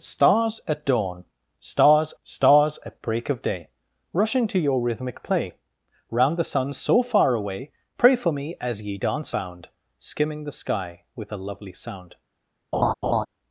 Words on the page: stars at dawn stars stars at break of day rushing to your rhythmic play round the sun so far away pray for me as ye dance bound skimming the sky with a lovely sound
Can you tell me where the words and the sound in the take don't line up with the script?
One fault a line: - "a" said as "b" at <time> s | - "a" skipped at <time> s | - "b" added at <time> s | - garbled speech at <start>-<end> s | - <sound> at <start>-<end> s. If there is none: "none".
- laugh at 12.7-13.3 s